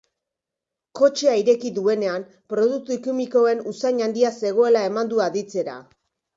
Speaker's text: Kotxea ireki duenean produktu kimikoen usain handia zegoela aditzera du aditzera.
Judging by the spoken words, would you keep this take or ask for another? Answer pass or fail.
fail